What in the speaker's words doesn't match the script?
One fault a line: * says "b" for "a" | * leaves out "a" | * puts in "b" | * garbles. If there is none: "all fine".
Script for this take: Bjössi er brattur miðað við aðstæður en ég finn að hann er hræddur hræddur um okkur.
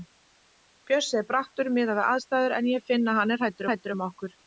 all fine